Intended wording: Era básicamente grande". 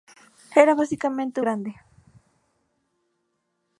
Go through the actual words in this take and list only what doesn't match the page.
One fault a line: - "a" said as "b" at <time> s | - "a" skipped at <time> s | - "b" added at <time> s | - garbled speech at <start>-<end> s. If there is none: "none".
none